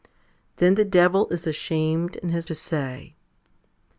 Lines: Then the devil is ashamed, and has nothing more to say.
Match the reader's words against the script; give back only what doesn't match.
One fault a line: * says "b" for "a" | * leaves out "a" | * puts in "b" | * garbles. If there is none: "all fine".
* leaves out "nothing more"